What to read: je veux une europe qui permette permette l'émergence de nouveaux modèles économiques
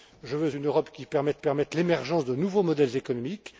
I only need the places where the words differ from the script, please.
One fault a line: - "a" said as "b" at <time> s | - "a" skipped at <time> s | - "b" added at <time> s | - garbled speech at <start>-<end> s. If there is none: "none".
none